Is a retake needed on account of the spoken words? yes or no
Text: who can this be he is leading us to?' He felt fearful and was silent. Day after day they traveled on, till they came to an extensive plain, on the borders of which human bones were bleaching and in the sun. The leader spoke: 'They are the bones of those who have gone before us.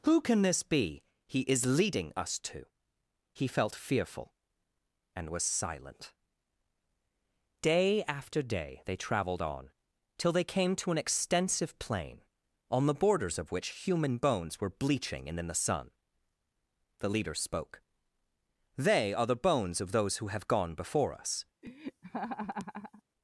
no